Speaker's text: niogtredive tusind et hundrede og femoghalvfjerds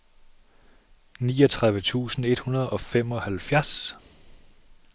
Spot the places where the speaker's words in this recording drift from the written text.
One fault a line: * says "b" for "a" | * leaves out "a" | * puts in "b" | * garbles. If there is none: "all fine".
all fine